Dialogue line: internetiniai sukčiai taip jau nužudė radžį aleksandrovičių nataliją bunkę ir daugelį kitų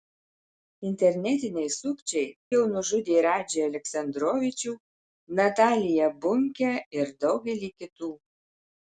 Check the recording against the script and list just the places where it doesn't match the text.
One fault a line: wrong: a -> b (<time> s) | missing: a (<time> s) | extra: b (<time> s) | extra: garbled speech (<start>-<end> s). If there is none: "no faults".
missing: taip (2.3 s)